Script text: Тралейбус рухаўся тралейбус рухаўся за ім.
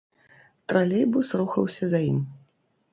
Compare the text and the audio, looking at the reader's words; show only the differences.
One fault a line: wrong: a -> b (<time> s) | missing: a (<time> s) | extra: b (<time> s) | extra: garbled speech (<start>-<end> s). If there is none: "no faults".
missing: тралейбус рухаўся (1.9 s)